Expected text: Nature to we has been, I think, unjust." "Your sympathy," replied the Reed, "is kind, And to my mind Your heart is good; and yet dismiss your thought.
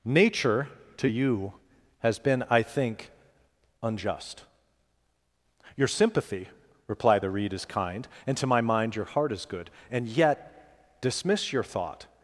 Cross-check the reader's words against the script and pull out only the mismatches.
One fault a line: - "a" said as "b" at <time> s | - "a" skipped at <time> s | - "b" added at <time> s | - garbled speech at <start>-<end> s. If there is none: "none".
- "we" said as "you" at 1.1 s